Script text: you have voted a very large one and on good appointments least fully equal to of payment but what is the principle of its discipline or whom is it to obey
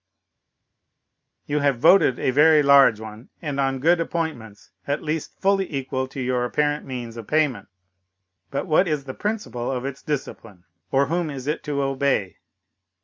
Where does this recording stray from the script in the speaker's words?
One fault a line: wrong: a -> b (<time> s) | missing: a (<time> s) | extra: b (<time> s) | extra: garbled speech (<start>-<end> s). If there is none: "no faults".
extra: at (4.9 s)
extra: your apparent means (6.2 s)